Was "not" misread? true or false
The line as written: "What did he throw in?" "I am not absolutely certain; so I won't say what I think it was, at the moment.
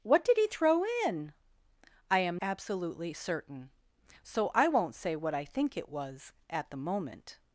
true